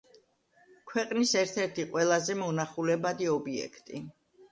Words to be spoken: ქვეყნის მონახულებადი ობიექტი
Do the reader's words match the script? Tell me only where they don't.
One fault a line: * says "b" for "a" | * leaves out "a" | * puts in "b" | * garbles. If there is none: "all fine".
* puts in "ერთ ერთი ყველაზე"